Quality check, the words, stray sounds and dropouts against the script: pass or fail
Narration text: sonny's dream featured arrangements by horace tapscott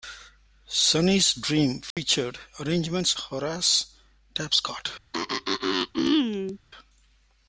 fail